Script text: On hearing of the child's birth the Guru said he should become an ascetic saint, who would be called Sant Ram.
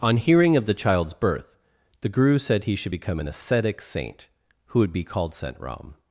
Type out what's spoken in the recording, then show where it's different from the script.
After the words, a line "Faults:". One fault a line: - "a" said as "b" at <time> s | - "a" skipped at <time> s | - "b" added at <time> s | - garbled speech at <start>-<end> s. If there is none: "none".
On hearing of the child's birth the Guru said he should become an ascetic saint, who would be called Sant Ram.
Faults:
none